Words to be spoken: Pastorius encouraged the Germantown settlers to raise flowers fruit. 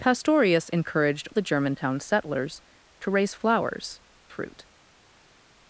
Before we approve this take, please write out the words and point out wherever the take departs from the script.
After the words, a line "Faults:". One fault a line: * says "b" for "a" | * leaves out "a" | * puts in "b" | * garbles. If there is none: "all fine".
Pastorius encouraged the Germantown settlers to raise flowers fruit.
Faults:
all fine